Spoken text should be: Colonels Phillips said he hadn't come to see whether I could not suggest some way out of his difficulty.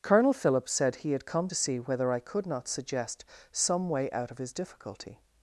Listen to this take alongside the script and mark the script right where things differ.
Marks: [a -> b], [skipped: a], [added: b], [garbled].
[Colonels -> Colonel] Phillips said he [hadn't -> had] come to see whether I could not suggest some way out of his difficulty.